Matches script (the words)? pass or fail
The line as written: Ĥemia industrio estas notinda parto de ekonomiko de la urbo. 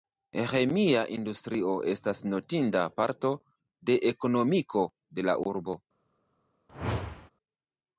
pass